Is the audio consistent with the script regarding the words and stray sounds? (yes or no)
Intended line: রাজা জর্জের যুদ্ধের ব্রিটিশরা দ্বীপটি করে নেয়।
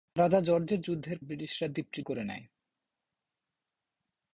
yes